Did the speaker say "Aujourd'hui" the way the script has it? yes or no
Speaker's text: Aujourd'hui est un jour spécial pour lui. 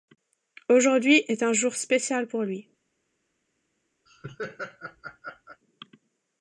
yes